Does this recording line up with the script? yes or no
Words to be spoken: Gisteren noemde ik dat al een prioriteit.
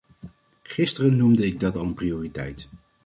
yes